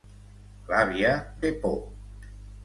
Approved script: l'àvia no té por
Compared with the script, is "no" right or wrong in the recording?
wrong